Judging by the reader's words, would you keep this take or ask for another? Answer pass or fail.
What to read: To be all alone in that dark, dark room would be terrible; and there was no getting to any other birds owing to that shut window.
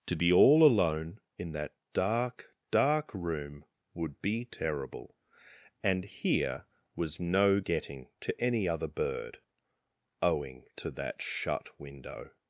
fail